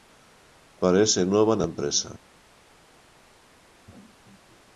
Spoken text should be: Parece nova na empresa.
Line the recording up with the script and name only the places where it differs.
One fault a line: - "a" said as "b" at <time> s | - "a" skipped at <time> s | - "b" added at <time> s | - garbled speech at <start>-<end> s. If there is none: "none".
none